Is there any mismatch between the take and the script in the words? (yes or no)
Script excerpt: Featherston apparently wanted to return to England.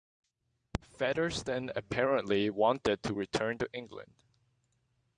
no